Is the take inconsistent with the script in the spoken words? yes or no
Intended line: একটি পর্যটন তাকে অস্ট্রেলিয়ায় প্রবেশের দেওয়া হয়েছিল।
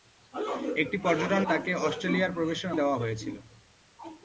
no